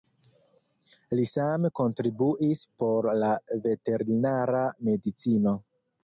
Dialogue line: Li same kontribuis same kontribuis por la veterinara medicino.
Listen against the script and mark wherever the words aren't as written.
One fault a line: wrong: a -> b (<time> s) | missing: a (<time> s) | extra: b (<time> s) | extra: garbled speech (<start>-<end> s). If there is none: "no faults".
missing: same kontribuis (2.6 s)